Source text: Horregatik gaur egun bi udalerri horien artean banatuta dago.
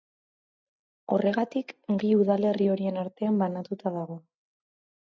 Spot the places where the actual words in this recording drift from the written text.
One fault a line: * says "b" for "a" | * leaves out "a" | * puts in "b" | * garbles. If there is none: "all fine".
* leaves out "gaur egun"